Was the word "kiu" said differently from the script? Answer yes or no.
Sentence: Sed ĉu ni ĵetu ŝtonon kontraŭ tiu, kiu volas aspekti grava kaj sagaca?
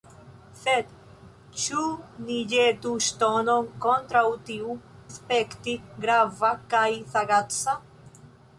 yes